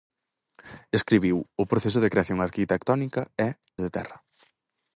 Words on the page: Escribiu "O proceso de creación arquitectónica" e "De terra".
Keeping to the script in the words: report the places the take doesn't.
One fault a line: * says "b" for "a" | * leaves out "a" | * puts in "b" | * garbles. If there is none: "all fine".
all fine